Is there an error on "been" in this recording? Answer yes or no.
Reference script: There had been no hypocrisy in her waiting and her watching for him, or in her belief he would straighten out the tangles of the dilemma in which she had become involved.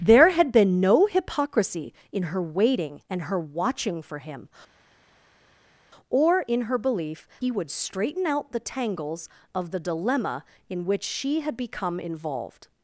no